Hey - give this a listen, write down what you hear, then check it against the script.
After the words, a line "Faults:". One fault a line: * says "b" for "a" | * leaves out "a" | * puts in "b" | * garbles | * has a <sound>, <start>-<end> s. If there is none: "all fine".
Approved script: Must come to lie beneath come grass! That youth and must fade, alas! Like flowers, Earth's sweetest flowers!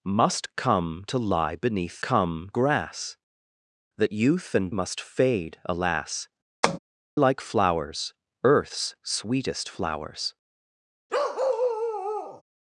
Must come to lie beneath come grass! That youth and must fade, alas! Like flowers, Earth's sweetest flowers!
Faults:
* has a tap, 6.6-6.8 s
* has a bark, 11.1-12.4 s